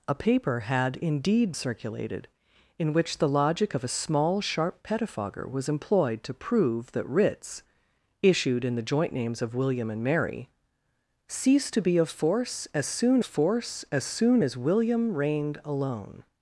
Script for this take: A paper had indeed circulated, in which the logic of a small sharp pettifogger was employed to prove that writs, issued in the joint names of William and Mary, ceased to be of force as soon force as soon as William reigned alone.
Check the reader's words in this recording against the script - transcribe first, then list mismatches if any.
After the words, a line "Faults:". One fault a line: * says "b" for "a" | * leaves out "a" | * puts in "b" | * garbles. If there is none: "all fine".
A paper had indeed circulated, in which the logic of a small sharp pettifogger was employed to prove that writs, issued in the joint names of William and Mary, ceased to be of force as soon force as soon as William reigned alone.
Faults:
all fine